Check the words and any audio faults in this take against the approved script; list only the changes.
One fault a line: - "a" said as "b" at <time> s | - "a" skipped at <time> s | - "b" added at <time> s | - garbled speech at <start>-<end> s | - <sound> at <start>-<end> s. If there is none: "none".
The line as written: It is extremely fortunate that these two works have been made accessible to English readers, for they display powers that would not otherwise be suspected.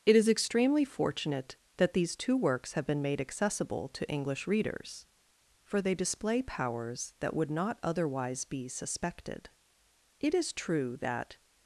- "It is true that" added at 10.2 s